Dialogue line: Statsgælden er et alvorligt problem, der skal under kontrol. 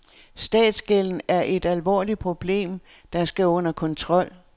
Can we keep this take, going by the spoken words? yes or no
yes